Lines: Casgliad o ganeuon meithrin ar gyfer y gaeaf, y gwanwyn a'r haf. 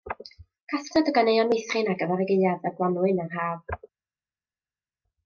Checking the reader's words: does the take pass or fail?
pass